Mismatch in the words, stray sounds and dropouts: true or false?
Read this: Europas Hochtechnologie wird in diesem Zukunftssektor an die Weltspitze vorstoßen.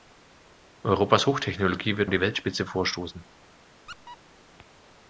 true